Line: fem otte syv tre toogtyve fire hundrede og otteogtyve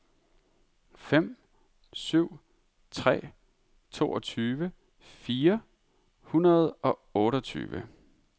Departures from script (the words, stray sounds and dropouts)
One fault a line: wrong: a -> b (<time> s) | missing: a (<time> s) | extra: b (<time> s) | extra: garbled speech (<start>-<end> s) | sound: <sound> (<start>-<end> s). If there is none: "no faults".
missing: otte (1.4 s)